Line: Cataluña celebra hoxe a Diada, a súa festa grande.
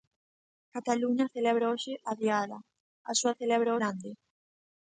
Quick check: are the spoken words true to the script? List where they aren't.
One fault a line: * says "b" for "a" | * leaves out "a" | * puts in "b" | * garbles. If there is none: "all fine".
* says "celebra" for "festa"